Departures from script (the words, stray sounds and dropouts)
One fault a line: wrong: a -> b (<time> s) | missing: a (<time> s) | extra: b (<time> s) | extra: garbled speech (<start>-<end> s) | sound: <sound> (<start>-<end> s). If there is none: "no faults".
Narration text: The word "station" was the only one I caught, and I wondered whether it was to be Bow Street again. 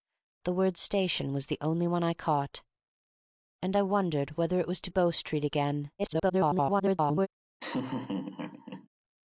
missing: be (4.9 s)
extra: garbled speech (6.0-7.3 s)
sound: laugh (7.6-8.9 s)